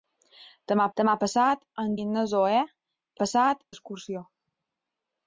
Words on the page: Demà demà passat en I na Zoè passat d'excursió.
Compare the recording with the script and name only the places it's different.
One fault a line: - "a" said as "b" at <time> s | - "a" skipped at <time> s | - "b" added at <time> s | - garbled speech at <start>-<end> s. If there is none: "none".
none